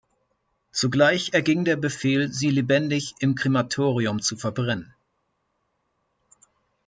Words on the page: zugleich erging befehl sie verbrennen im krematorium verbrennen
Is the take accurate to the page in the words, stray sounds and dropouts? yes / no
no